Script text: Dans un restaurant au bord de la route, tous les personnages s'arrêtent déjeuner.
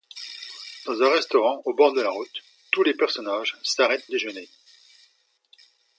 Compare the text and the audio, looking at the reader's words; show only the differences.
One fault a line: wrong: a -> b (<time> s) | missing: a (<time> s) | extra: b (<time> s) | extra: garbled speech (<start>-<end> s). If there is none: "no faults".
no faults